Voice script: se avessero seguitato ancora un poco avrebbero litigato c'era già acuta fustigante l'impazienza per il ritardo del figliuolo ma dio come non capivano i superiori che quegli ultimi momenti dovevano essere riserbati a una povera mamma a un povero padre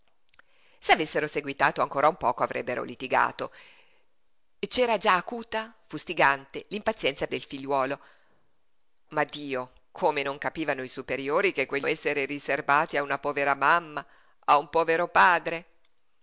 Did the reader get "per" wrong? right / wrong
wrong